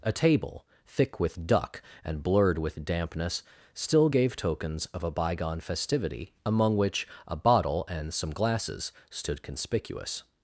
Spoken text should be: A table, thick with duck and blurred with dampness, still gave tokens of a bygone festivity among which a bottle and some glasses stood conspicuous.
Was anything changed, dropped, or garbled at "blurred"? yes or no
no